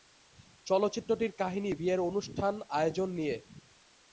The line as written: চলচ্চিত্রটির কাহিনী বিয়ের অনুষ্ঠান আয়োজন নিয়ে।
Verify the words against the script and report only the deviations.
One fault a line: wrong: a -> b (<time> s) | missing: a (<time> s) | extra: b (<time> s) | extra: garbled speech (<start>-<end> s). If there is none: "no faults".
no faults